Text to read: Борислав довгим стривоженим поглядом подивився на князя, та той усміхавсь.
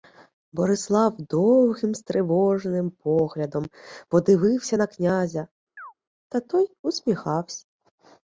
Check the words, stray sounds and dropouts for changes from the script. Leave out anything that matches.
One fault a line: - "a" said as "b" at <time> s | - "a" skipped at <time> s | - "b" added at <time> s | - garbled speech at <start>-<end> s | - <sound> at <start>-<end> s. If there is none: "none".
- chirp at 5.8-5.9 s